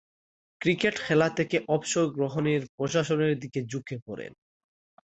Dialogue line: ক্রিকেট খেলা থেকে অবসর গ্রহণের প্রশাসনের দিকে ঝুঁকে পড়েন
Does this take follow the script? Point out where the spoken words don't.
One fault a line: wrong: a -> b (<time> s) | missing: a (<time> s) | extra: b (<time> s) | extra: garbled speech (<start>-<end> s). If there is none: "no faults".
no faults